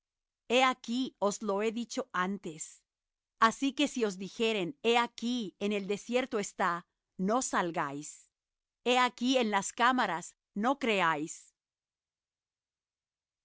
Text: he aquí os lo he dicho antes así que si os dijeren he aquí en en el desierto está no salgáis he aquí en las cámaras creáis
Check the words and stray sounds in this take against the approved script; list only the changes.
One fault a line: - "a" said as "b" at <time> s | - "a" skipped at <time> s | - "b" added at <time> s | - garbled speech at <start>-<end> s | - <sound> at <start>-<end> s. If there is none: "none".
- "en" skipped at 5.7 s
- "no" added at 10.5 s